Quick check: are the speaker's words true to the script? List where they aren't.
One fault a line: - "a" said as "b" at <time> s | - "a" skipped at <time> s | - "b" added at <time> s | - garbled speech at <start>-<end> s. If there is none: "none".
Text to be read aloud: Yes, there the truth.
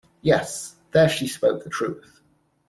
- "she spoke" added at 1.1 s